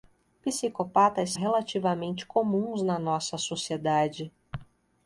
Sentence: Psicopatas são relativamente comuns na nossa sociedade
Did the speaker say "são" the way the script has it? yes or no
no